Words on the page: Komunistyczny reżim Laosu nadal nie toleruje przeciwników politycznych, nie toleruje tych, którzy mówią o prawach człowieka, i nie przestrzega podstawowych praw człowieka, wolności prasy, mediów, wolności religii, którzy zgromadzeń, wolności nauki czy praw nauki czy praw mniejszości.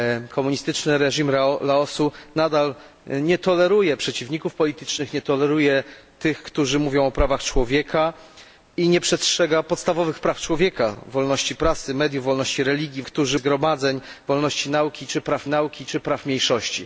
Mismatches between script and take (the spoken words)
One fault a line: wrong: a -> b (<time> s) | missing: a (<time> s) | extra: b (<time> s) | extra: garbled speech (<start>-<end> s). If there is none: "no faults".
no faults